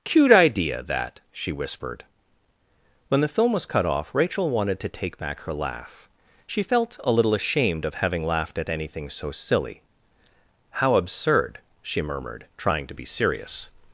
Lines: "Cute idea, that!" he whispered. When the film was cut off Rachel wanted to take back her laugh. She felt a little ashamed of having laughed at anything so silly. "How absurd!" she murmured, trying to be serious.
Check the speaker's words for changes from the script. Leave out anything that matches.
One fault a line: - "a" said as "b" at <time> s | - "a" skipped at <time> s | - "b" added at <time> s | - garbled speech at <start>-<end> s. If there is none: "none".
- "he" said as "she" at 1.3 s